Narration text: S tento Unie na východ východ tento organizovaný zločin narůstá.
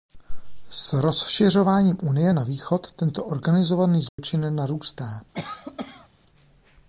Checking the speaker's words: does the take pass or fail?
fail